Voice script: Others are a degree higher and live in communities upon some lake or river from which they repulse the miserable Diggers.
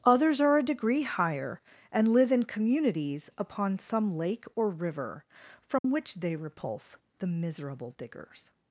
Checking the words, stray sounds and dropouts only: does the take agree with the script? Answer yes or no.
no